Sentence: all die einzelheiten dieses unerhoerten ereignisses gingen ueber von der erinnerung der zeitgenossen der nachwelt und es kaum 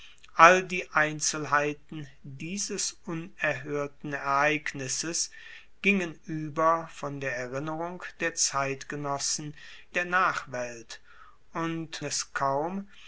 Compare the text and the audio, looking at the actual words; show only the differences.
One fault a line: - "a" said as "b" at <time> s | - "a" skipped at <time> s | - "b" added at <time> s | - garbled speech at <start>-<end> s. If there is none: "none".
none